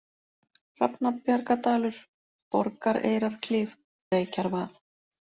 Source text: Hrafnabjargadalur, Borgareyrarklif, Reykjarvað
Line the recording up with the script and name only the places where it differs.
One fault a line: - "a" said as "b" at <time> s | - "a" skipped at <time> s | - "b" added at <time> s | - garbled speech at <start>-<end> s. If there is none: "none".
none